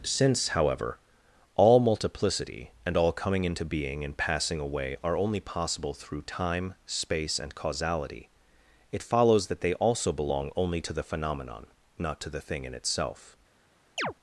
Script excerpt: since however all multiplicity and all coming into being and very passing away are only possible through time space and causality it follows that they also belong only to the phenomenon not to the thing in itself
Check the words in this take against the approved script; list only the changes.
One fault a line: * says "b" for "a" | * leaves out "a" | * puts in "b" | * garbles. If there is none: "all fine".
* leaves out "very"